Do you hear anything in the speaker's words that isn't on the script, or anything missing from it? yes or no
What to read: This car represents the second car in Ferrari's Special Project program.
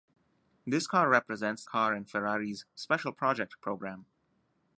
yes